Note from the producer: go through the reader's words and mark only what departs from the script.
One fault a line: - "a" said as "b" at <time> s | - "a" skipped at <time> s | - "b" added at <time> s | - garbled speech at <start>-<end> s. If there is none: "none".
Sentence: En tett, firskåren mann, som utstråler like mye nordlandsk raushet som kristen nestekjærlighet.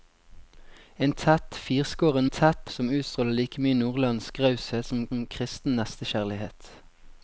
- "mann" said as "tett" at 2.3 s
- "som" added at 5.1 s